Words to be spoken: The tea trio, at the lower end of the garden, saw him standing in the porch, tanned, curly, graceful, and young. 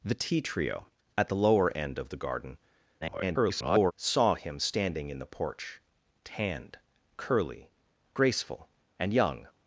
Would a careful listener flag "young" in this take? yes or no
no